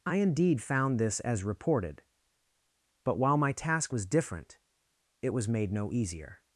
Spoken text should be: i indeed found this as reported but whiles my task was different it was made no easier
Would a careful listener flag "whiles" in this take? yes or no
yes